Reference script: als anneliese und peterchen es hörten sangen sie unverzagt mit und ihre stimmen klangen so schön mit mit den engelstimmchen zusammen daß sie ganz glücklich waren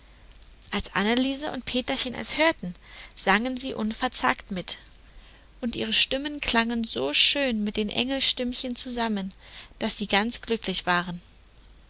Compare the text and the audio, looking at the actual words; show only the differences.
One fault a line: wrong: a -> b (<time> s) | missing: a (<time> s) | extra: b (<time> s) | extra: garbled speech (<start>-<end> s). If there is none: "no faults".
missing: mit (7.8 s)